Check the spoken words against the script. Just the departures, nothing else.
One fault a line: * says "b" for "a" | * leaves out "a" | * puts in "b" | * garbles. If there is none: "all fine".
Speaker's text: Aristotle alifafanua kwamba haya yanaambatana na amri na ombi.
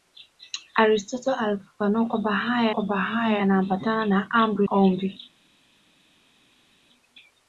* puts in "kwamba haya"
* leaves out "na"